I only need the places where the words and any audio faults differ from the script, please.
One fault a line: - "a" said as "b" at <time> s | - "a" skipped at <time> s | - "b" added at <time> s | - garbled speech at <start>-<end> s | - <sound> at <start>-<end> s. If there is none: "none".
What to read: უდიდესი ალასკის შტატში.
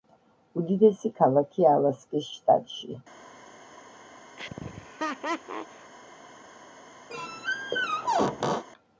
- "ქალაქია" added at 1.2 s
- laugh at 4.4-5.9 s
- squeak at 7.1-8.6 s